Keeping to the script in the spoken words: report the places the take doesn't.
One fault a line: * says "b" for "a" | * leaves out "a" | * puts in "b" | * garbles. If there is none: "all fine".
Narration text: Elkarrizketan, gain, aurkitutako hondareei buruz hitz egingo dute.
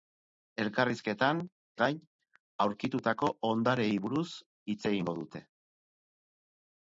all fine